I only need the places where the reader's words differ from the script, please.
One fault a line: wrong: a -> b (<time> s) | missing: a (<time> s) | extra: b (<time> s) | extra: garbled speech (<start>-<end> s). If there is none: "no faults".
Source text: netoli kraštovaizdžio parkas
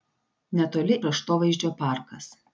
no faults